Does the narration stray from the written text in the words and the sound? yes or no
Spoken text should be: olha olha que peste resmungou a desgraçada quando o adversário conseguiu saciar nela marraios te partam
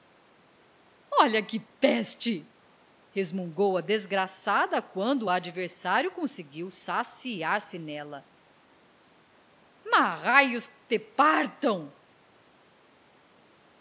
yes